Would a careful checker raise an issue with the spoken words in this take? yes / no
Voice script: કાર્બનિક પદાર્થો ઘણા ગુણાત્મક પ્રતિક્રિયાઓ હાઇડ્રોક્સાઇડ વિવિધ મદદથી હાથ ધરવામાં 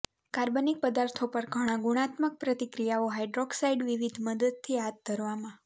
yes